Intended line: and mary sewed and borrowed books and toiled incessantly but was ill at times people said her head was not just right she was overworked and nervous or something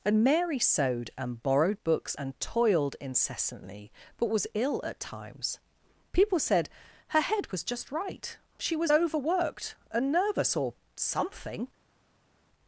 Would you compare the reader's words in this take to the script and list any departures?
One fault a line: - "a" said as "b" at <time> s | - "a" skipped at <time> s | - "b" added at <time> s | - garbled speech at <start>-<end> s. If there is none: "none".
- "not" skipped at 7.6 s